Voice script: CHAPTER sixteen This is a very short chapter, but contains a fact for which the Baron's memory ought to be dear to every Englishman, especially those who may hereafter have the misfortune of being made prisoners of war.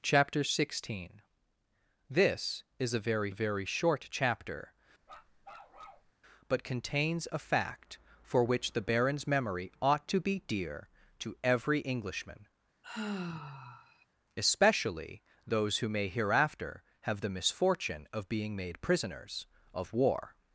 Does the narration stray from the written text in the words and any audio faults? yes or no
yes